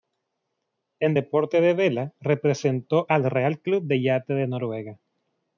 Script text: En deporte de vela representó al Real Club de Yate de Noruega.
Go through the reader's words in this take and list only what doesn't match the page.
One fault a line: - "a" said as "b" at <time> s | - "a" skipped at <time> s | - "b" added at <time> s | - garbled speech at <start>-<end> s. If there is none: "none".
none